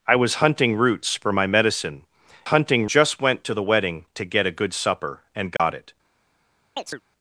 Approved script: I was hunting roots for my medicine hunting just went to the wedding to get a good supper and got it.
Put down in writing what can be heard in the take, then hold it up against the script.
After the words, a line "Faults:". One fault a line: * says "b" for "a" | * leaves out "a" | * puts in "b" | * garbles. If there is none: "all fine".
I was hunting roots for my medicine hunting just went to the wedding to get a good supper and got it.
Faults:
all fine